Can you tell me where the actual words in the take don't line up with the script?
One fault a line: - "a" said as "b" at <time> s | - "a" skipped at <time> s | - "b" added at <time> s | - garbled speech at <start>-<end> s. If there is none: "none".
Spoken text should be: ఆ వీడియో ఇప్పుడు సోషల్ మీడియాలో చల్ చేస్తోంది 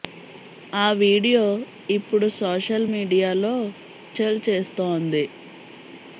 none